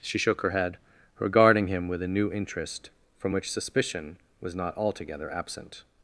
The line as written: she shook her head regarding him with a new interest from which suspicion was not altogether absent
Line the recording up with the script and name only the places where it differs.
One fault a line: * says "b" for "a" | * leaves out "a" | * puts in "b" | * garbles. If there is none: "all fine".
all fine